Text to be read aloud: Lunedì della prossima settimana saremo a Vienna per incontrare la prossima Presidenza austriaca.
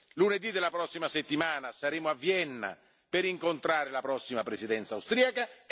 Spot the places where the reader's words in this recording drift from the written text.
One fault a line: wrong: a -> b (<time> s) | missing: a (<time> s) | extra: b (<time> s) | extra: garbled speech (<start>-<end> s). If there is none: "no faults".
no faults